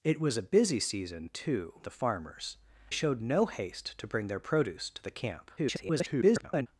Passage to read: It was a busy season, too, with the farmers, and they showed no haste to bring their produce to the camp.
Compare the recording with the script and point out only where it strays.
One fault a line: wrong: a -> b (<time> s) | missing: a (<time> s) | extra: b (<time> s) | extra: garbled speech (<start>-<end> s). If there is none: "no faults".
missing: with (1.8 s)
missing: and they (2.6 s)
extra: garbled speech (5.6-6.7 s)